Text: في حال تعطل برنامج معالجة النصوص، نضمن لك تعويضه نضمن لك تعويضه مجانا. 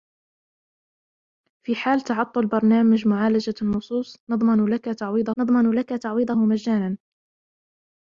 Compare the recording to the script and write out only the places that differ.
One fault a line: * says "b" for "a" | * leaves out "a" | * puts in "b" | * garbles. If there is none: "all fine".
all fine